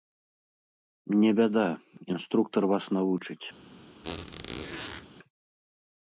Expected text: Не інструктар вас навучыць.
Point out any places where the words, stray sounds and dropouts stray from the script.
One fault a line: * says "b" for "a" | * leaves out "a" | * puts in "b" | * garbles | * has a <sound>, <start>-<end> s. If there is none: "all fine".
* puts in "бяда"
* has a squeak, 4.0-5.1 s